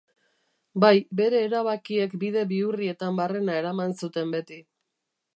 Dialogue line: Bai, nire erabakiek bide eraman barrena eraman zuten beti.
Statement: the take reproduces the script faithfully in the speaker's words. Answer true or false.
false